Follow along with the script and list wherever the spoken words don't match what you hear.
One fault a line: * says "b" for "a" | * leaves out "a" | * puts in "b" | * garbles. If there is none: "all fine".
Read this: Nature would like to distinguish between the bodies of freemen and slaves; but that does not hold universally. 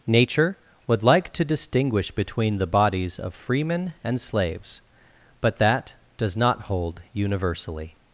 all fine